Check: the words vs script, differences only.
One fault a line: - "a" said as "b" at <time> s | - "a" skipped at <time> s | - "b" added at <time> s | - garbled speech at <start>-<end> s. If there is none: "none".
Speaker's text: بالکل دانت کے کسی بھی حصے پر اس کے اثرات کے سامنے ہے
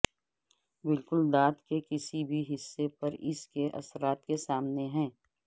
none